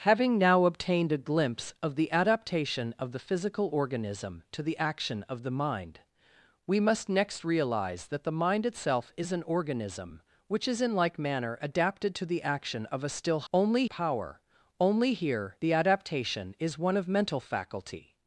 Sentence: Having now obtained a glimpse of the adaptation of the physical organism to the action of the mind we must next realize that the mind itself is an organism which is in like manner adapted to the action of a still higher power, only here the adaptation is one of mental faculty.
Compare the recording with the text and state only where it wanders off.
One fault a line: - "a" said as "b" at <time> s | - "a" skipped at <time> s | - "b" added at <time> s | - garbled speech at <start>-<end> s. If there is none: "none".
- "higher" said as "only" at 13.5 s